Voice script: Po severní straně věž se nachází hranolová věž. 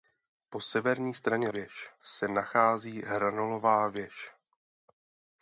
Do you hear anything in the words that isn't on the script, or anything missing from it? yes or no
no